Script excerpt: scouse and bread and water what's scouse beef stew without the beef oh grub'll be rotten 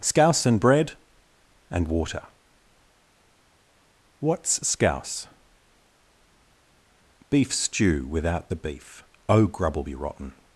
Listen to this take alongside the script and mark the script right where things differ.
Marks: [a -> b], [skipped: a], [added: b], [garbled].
scouse and bread and water what's scouse beef stew without the beef oh grub'll be rotten